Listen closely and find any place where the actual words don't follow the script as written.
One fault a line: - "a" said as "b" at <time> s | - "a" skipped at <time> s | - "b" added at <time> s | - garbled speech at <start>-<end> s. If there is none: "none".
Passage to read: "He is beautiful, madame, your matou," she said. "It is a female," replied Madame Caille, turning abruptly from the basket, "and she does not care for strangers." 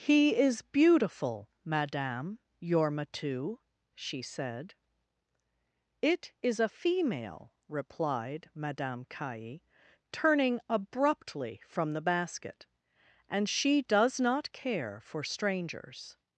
none